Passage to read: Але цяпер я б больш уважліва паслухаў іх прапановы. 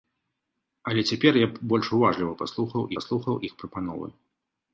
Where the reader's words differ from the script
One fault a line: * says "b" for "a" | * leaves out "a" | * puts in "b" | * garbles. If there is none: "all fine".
* puts in "паслухаў"